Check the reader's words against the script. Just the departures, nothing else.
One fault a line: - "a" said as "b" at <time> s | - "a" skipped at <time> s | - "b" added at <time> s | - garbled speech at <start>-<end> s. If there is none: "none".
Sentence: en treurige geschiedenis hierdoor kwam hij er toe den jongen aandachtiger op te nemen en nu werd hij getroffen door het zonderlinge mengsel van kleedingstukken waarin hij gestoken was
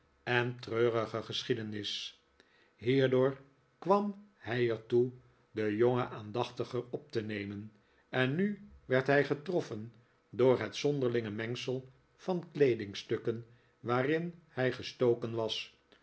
none